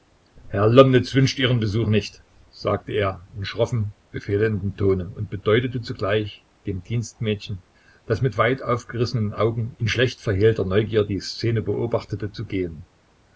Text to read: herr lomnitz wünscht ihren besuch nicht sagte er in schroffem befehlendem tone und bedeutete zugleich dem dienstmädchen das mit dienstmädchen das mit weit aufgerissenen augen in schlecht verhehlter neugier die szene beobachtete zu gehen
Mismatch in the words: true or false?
true